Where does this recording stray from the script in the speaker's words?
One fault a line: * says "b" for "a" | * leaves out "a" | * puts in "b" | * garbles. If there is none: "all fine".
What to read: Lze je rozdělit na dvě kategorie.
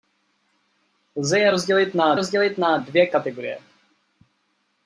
* puts in "rozdělit na"